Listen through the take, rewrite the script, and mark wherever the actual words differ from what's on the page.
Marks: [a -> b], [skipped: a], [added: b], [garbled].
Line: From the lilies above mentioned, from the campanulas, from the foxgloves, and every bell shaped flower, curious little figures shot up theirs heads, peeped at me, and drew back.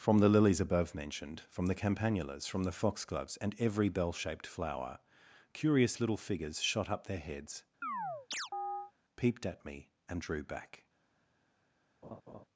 From the lilies above mentioned, from the campanulas, from the foxgloves, and every bell shaped flower, curious little figures shot up [theirs -> their] heads, peeped at me, and drew back.